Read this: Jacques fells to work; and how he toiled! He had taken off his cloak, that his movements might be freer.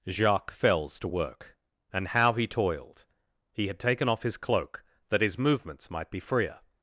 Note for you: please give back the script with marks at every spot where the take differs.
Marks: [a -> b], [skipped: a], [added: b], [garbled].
Jacques fells to work; and how he toiled! He had taken off his cloak, that his movements might be freer.